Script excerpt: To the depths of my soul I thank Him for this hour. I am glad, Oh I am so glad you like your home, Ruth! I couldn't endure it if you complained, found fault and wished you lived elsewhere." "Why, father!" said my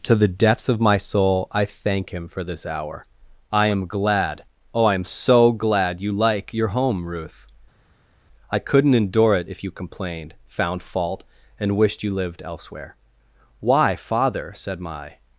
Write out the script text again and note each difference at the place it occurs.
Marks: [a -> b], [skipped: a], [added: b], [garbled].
To the depths of my soul I thank Him for this hour. I am glad, Oh I am so glad you like your home, Ruth! I couldn't endure it if you complained, found fault and wished you lived elsewhere." "Why, father!" said my